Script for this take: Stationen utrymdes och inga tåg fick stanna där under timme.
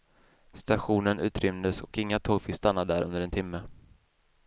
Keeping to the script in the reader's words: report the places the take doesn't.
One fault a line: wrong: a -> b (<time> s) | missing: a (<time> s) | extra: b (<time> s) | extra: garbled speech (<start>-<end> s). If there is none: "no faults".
extra: en (3.2 s)